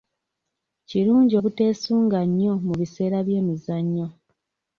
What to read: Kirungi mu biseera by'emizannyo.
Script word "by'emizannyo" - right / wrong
right